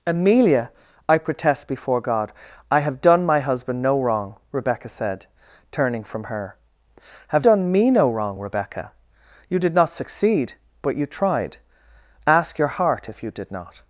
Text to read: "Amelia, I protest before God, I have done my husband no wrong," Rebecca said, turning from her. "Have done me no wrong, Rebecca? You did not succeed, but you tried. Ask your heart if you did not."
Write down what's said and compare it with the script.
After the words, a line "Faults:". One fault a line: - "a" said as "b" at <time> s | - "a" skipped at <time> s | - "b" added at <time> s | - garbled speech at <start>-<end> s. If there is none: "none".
"Amelia, I protest before God, I have done my husband no wrong," Rebecca said, turning from her. "Have done me no wrong, Rebecca? You did not succeed, but you tried. Ask your heart if you did not."
Faults:
none